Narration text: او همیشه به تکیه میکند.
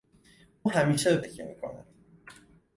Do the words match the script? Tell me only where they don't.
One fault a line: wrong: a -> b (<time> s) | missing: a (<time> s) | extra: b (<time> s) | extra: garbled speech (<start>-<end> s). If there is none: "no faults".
no faults